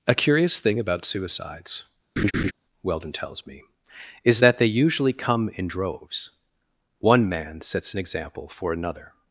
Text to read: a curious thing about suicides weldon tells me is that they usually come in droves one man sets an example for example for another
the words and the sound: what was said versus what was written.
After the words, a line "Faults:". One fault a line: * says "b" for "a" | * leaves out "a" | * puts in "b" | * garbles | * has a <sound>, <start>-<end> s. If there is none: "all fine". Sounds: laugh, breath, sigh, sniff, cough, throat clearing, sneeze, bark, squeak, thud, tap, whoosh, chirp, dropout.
a curious thing about suicides weldon tells me is that they usually come in droves one man sets an example for another
Faults:
* has a laugh, 2.2-2.5 s
* leaves out "example for"